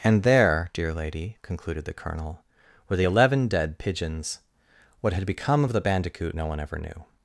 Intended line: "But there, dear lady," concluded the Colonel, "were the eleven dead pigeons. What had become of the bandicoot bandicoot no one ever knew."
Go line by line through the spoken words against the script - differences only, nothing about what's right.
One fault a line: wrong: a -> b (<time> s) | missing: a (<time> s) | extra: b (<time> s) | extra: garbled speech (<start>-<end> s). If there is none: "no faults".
wrong: But -> And (0.0 s)
missing: bandicoot (6.4 s)